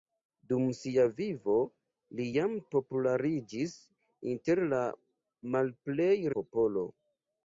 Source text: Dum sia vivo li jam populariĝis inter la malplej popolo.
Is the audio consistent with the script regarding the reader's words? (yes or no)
yes